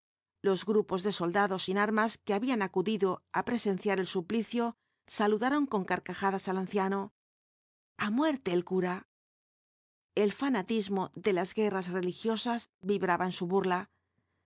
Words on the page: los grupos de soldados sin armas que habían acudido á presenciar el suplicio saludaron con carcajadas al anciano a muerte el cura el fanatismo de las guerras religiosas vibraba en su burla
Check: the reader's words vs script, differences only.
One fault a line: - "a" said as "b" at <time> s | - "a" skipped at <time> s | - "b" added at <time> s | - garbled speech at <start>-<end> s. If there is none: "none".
none